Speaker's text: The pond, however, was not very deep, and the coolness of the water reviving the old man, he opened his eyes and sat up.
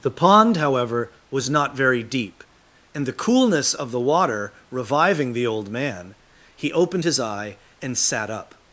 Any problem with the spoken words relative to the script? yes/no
yes